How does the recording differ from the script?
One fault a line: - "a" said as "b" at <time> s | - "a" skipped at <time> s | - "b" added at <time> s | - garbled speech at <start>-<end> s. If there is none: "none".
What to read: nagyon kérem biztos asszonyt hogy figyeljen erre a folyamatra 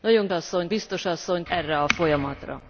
- "kérem" said as "asszonyt" at 0.3 s
- "hogy figyeljen" skipped at 1.5 s